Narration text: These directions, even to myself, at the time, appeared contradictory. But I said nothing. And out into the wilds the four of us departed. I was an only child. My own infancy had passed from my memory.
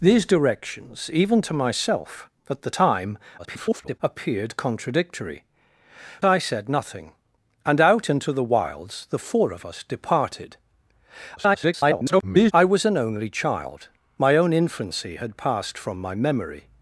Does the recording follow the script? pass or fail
fail